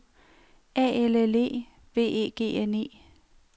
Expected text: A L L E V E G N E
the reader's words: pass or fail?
pass